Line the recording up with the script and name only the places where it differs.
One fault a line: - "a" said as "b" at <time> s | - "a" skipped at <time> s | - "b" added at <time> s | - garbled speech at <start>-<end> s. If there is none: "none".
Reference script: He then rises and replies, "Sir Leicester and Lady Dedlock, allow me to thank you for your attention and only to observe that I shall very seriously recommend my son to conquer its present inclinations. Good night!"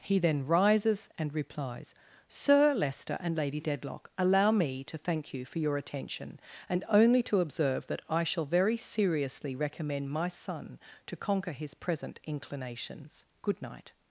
- "its" said as "his" at 11.5 s